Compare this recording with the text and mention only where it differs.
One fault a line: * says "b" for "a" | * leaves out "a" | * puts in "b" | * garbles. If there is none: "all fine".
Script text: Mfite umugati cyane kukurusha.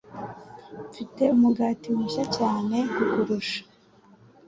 * puts in "mushya"